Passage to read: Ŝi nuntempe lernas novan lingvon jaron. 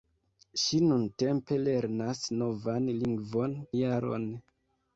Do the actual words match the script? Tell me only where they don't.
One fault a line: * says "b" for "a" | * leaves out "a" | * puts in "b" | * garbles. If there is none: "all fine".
all fine